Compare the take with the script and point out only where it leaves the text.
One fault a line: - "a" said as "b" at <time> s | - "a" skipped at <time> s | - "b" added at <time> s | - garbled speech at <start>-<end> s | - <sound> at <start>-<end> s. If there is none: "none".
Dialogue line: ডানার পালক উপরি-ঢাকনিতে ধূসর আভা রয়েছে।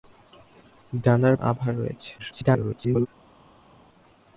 - "পালক উপরি-ঢাকনিতে ধূসর" skipped at 1.4 s
- garbled speech at 2.2-3.1 s